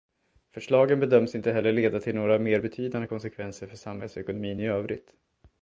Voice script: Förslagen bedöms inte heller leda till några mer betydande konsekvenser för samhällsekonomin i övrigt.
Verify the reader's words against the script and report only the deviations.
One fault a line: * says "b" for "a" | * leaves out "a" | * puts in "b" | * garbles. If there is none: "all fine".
all fine